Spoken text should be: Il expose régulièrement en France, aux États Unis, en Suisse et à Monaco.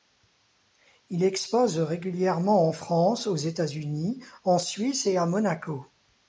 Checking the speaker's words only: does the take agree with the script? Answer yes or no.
yes